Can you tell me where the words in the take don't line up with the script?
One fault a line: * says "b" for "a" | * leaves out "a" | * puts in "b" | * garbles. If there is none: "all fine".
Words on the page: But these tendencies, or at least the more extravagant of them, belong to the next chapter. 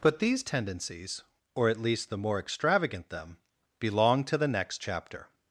* leaves out "of"